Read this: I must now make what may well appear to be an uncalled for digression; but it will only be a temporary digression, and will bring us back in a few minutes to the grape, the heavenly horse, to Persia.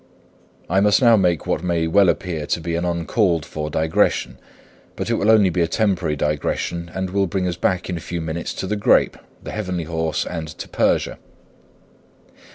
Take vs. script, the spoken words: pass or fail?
fail